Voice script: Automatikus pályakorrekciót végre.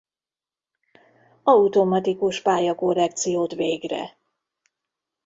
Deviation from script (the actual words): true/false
false